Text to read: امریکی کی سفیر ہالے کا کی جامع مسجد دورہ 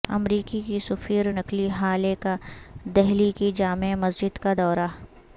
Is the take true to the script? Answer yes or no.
no